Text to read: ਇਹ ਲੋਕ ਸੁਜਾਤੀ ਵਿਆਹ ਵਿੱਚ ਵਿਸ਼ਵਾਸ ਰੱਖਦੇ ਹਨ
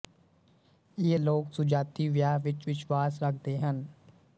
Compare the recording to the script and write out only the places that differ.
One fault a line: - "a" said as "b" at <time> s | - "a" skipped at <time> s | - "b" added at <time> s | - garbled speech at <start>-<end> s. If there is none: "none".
none